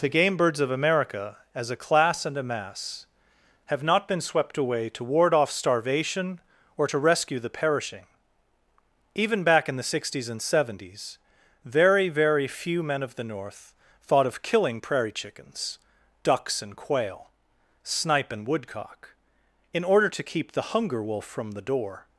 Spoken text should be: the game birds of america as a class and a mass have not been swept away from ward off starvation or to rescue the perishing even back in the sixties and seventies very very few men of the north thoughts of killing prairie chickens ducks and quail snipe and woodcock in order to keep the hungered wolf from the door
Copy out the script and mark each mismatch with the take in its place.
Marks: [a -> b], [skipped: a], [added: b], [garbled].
the game birds of america as a class and a mass have not been swept away [from -> to] ward off starvation or to rescue the perishing even back in the sixties and seventies very very few men of the north [thoughts -> thought] of killing prairie chickens ducks and quail snipe and woodcock in order to keep the [hungered -> hunger] wolf from the door